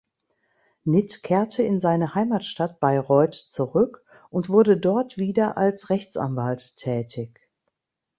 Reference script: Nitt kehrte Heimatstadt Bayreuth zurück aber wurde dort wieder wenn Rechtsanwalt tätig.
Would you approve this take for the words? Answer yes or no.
no